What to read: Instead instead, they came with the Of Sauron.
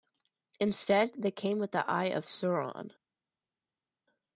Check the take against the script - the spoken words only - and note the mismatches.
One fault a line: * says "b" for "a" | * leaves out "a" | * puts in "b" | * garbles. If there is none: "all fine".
* leaves out "instead"
* puts in "Eye"